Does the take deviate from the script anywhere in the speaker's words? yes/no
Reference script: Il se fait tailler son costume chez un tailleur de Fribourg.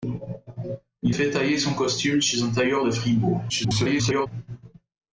yes